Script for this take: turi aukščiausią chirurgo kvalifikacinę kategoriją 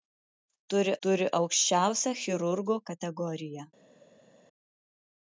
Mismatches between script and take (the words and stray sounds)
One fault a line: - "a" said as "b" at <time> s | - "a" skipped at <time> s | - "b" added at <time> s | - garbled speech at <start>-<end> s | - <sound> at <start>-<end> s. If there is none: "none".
- "turi" added at 1.1 s
- "kvalifikacinę" skipped at 2.8 s